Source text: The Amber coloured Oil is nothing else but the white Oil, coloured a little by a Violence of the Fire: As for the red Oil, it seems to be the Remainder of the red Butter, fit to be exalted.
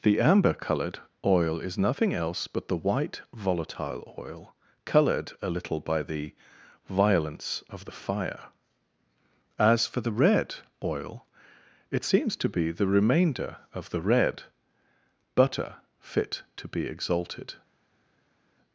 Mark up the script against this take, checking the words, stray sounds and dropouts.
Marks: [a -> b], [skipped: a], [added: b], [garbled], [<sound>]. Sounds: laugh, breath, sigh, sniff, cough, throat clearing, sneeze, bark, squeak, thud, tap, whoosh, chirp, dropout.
The Amber coloured Oil is nothing else but the white [added: volatile] Oil, coloured a little by [a -> the] Violence of the Fire: As for the red Oil, it seems to be the Remainder of the red Butter, fit to be exalted.